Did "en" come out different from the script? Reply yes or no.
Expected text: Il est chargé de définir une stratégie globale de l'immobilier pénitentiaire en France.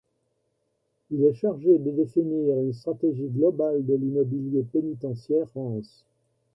yes